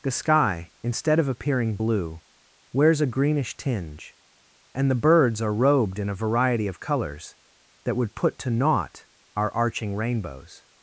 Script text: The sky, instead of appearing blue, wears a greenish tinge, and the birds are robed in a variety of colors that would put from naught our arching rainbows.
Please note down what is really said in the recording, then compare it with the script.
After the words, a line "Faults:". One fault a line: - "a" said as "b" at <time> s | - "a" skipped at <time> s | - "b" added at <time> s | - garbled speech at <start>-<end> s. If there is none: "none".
The sky, instead of appearing blue, wears a greenish tinge, and the birds are robed in a variety of colors that would put to naught our arching rainbows.
Faults:
- "from" said as "to" at 8.4 s